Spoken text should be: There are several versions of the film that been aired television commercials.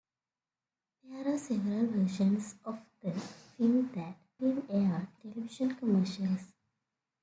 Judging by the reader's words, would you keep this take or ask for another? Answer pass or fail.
pass